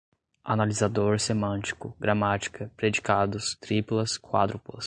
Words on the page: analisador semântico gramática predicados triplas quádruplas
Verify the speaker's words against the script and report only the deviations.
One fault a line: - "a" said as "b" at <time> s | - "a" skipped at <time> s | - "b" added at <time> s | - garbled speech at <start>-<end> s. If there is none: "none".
none